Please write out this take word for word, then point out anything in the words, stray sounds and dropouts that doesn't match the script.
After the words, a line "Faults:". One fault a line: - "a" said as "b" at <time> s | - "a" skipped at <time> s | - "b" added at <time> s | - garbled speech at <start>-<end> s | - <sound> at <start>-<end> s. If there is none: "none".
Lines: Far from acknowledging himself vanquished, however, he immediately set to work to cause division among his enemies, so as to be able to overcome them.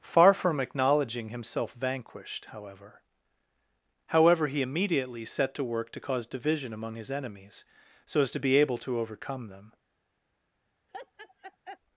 Far from acknowledging himself vanquished, however however, he immediately set to work to cause division among his enemies, so as to be able to overcome them.
Faults:
- "however" added at 4.1 s
- laugh at 10.9-11.8 s